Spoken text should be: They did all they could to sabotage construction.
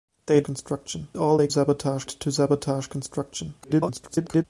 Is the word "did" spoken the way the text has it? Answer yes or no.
no